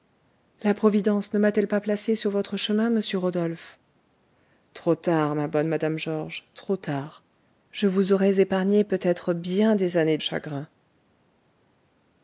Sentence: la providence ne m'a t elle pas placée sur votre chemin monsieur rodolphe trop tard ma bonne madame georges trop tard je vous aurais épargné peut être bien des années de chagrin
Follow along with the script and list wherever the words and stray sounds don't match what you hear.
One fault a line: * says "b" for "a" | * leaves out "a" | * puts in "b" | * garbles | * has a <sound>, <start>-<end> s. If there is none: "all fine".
* leaves out "de"